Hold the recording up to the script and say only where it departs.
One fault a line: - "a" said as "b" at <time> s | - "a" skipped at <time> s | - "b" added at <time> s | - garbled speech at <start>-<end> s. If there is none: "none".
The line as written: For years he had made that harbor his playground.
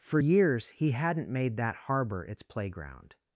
- "had" said as "hadn't" at 0.9 s
- "his" said as "its" at 2.2 s